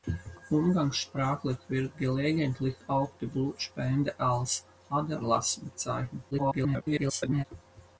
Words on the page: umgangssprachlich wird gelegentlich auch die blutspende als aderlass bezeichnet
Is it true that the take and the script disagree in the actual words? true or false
true